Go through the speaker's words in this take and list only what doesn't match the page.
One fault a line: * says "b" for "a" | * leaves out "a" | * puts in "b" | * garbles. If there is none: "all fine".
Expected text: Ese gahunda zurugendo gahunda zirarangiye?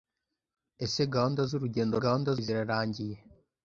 all fine